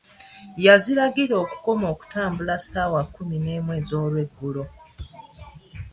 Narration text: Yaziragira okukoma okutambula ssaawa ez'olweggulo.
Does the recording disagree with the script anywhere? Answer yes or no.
yes